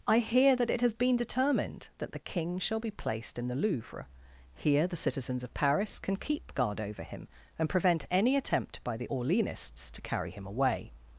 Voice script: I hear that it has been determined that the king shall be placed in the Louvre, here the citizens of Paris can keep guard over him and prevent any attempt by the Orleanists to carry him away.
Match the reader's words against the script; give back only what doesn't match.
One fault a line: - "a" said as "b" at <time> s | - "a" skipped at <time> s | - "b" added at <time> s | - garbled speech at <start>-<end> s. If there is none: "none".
none